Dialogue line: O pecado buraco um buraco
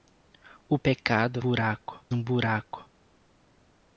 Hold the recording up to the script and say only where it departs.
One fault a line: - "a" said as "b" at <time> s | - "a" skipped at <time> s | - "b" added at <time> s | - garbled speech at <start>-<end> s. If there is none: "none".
none